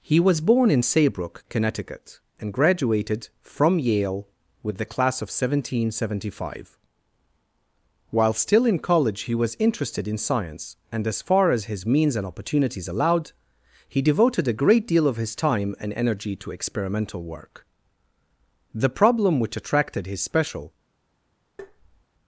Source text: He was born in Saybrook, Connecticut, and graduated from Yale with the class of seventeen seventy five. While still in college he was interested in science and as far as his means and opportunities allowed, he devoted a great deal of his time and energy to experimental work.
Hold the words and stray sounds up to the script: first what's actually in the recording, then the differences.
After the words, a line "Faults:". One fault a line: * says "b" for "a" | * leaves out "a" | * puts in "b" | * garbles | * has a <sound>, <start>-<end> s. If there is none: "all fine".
He was born in Saybrook, Connecticut, and graduated from Yale with the class of seventeen seventy five. While still in college he was interested in science and as far as his means and opportunities allowed, he devoted a great deal of his time and energy to experimental work. The problem which attracted his special
Faults:
* puts in "The problem which attracted his special"
* has a tap, 21.6-22.0 s